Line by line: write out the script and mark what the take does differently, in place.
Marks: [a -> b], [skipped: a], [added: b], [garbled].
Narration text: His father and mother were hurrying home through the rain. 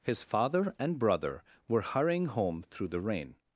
His father and [mother -> brother] were hurrying home through the rain.